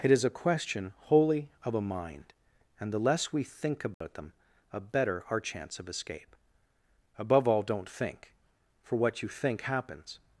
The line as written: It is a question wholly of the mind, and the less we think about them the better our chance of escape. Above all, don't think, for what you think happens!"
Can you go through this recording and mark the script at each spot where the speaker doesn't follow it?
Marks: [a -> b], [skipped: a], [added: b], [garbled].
It is a question wholly of [the -> a] mind, and the less we think about them [the -> a] better our chance of escape. Above all, don't think, for what you think happens!"